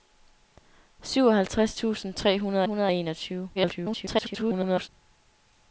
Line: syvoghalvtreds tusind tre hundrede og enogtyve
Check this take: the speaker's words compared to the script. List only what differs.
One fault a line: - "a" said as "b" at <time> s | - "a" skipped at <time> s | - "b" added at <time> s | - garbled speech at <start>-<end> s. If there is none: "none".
- "hundrede" added at 2.6 s
- garbled speech at 3.5-4.9 s